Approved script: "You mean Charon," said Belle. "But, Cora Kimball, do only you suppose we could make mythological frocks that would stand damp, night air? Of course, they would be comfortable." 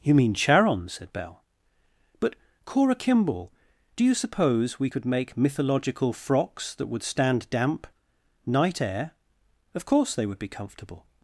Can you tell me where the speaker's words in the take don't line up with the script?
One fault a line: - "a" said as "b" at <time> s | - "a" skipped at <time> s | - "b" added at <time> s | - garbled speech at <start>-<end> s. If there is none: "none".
- "only" skipped at 4.0 s